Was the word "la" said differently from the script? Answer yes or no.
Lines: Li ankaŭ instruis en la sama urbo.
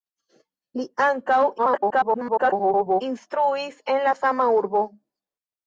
no